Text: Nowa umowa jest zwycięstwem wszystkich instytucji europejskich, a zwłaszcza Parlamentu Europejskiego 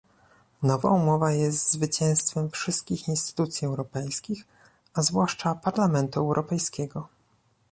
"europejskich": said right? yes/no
yes